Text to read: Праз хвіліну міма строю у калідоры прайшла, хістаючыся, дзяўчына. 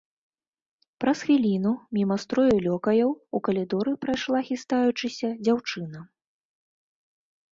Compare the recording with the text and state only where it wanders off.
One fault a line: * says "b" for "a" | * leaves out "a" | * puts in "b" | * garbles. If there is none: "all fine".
* puts in "лёкаяў"